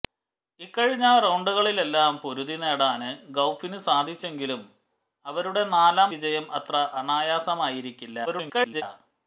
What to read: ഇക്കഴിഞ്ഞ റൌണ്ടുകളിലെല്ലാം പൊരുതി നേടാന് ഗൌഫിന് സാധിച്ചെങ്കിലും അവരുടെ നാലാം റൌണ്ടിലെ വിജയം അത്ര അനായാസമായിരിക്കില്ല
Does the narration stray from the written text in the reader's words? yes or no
yes